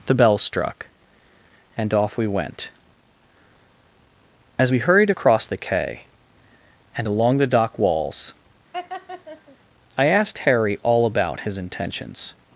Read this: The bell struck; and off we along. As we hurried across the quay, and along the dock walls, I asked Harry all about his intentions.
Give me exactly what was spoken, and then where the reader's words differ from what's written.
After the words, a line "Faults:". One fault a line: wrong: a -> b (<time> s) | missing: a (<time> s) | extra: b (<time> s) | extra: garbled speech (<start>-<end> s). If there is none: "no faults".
The bell struck; and off we went. As we hurried across the quay, and along the dock walls, I asked Harry all about his intentions.
Faults:
wrong: along -> went (2.3 s)